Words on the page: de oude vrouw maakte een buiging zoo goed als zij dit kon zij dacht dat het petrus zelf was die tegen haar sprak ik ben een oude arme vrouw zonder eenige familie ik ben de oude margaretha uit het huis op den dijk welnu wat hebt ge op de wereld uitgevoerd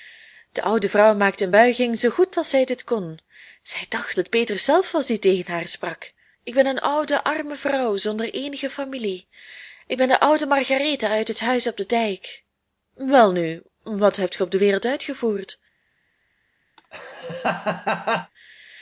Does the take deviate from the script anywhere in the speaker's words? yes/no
yes